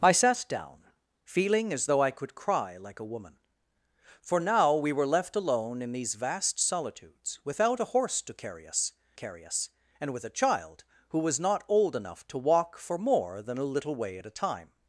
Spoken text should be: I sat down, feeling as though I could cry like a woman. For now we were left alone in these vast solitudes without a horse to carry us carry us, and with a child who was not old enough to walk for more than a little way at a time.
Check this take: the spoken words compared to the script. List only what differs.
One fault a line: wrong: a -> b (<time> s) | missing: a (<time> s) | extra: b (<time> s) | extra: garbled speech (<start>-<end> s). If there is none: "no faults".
no faults